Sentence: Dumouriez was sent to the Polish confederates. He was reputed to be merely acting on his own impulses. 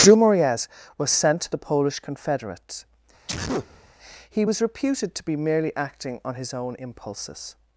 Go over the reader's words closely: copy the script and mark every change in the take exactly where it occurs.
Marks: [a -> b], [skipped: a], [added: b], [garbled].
Dumouriez was sent to the Polish confederates. He was reputed to be merely acting on his own impulses.